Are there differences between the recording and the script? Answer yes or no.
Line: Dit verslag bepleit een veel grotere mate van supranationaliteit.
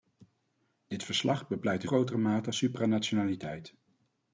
yes